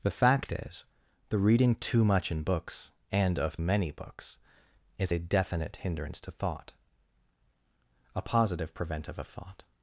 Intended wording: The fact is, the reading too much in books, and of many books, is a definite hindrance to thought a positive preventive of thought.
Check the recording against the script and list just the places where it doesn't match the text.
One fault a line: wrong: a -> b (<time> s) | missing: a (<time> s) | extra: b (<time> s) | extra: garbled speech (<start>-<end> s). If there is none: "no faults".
no faults